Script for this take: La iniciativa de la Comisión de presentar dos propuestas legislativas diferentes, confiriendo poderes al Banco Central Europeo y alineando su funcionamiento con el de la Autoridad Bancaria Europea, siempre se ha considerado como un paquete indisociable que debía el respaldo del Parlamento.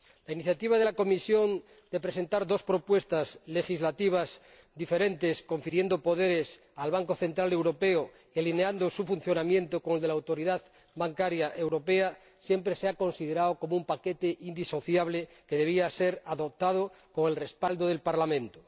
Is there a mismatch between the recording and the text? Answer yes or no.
yes